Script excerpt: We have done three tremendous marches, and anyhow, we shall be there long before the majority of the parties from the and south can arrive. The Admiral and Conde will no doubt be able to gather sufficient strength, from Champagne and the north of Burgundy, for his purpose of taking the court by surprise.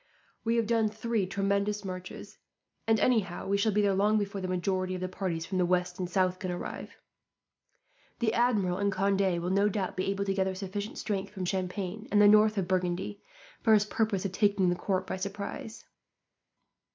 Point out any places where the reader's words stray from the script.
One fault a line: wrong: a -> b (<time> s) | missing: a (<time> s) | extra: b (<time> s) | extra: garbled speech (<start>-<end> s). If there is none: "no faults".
extra: west (5.7 s)